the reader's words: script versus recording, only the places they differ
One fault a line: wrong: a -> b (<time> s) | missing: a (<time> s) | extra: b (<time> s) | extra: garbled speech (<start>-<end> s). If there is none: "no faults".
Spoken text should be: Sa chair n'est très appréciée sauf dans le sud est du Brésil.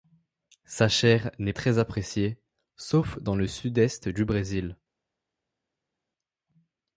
no faults